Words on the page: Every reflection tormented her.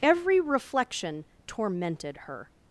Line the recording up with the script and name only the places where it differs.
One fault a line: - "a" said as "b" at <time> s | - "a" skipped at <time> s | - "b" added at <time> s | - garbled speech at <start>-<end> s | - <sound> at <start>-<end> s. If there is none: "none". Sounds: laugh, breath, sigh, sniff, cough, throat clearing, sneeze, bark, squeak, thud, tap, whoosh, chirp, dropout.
none